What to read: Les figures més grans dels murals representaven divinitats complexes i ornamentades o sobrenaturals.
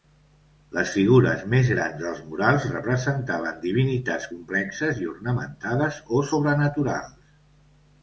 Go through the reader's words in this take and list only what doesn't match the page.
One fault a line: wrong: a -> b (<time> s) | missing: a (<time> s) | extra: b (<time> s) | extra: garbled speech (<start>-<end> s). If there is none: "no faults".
no faults